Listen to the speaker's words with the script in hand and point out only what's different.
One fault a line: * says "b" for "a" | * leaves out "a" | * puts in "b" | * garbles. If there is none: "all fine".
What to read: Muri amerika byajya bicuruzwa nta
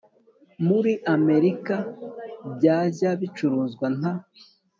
all fine